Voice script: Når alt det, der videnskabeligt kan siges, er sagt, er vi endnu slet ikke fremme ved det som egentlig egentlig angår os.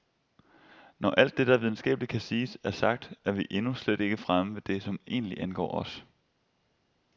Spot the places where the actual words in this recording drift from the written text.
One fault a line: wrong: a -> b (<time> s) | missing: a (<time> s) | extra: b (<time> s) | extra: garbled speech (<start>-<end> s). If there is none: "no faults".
missing: egentlig (5.4 s)